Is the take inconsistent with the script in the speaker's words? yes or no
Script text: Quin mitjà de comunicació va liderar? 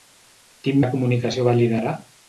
yes